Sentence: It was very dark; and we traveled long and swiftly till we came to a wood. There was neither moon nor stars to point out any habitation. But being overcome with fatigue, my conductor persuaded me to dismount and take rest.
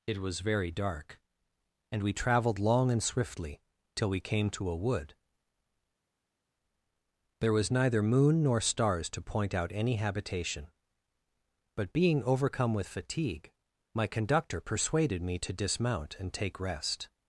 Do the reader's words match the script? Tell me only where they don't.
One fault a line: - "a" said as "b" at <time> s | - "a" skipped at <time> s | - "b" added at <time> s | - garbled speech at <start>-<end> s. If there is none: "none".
none